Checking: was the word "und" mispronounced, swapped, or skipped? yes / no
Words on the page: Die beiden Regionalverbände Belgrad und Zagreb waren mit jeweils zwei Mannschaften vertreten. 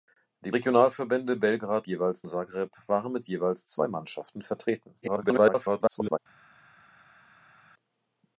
yes